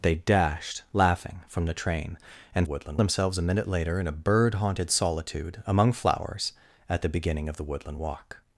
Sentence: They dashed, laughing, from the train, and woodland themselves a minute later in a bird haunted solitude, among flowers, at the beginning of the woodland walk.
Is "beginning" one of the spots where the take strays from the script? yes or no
no